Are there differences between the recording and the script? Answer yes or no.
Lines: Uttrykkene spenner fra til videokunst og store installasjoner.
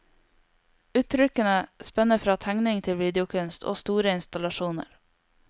yes